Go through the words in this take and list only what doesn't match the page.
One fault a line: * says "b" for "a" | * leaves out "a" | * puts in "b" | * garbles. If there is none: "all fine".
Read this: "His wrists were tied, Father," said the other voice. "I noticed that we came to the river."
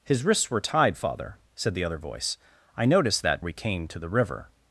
all fine